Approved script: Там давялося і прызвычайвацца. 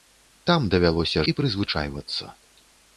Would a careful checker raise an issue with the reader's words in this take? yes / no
no